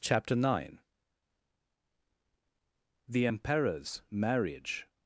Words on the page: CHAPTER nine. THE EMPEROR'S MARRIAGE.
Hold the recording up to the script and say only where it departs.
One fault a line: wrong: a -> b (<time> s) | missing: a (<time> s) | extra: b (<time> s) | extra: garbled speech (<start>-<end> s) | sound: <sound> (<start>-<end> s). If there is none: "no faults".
no faults